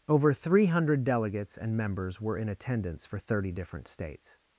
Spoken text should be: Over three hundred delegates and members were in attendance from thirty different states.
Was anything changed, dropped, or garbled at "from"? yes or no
yes